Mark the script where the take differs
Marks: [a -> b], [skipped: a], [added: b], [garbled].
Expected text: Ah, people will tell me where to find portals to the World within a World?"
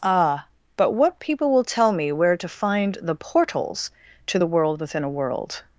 Ah, [added: but what] people will tell me where to find [added: the] portals to the World within a World?"